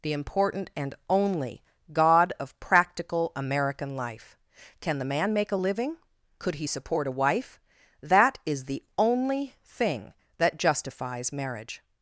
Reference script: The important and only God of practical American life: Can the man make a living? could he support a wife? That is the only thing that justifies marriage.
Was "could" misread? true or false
false